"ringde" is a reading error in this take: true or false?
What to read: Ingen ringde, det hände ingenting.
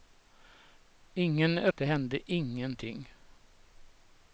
true